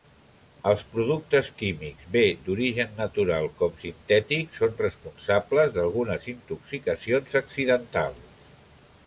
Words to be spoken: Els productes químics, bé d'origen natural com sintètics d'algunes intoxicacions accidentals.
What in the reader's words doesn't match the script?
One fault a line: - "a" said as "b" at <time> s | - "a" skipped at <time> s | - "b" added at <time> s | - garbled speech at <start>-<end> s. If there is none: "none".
- "són responsables" added at 4.6 s